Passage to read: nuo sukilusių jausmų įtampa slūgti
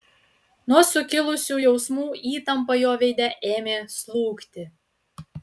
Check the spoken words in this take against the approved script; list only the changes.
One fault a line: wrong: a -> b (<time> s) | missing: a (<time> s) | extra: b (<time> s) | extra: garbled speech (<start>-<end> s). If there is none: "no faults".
extra: jo veide ėmė (2.8 s)